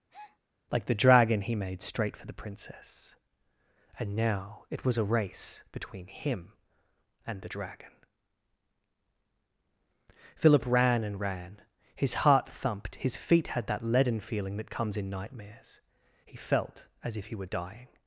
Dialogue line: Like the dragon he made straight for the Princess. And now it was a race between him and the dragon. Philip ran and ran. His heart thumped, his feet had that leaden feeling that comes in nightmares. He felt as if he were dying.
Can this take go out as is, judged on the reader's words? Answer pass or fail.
pass